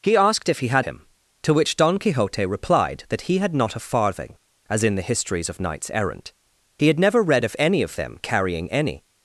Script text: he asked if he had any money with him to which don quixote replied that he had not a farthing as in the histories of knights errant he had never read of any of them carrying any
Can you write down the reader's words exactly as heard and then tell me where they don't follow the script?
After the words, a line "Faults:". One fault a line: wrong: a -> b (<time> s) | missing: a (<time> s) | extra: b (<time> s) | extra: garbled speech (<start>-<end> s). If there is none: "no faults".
he asked if he had him to which don quixote replied that he had not a farthing as in the histories of knights errant he had never read of any of them carrying any
Faults:
missing: any money with (0.8 s)